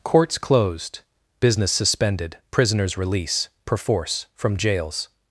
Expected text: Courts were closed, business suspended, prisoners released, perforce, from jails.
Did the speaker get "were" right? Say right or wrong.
wrong